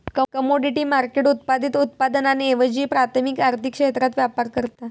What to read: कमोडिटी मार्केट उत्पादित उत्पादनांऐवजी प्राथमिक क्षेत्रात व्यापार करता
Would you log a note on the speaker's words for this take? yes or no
yes